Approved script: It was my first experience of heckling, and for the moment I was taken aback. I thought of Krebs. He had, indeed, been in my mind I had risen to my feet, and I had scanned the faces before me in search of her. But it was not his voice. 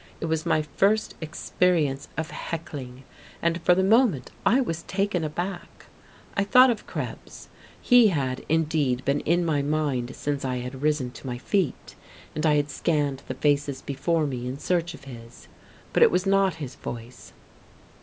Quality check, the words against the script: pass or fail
fail